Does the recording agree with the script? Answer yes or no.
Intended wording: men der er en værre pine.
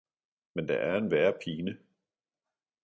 yes